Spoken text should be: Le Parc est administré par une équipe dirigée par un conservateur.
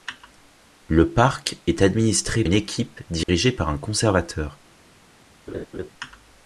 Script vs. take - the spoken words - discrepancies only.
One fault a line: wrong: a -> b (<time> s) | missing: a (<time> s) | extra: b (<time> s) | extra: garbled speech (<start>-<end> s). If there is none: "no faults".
missing: par (2.4 s)